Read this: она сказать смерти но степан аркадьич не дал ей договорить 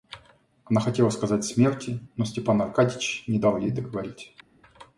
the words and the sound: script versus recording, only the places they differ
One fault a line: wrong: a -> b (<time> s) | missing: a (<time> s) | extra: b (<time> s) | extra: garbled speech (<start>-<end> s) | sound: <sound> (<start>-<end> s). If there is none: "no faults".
extra: хотела (0.8 s)